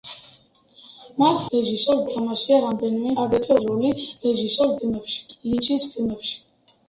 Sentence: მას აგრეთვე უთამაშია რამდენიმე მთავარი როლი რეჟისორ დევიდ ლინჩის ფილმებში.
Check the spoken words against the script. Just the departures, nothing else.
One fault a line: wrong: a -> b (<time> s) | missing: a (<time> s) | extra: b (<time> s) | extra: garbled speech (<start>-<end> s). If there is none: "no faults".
wrong: აგრეთვე -> რეჟისორ (1.6 s)
wrong: მთავარი -> აგრეთვე (3.2 s)
wrong: დევიდ -> ფილმებში (4.8 s)